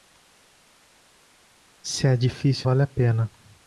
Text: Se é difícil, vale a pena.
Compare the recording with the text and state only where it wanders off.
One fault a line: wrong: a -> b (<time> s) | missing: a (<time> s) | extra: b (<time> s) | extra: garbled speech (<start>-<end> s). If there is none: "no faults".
no faults